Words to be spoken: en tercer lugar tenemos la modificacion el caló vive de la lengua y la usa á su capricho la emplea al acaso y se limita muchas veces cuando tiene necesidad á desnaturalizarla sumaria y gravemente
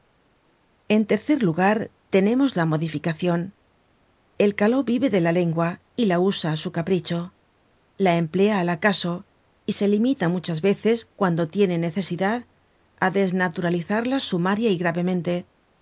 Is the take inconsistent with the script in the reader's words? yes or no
no